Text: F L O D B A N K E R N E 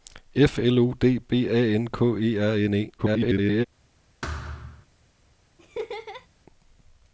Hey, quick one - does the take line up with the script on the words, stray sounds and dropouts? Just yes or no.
no